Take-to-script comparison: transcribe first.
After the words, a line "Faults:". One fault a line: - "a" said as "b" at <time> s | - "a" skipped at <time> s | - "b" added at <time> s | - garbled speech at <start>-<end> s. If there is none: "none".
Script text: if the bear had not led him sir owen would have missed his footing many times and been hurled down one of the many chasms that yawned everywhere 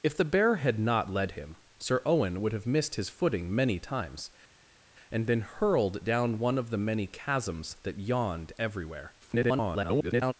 if the bear had not led him sir owen would have missed his footing many times and been hurled down one of the many chasms that yawned everywhere [garbled]
Faults:
- garbled speech at 9.2-10.3 s